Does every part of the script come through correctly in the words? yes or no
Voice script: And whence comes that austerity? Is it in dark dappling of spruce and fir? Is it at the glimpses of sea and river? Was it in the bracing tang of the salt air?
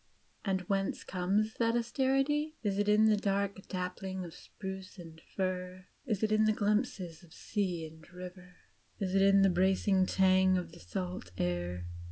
no